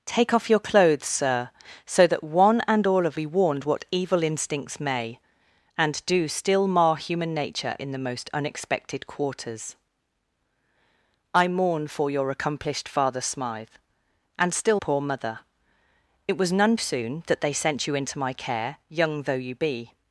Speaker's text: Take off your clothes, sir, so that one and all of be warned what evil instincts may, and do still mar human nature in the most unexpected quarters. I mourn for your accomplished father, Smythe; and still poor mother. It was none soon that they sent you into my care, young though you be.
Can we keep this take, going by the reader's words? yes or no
yes